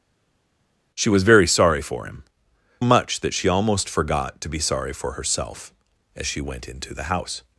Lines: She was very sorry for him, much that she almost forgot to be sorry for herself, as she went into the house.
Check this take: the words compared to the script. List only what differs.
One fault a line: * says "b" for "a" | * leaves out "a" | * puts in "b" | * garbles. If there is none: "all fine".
all fine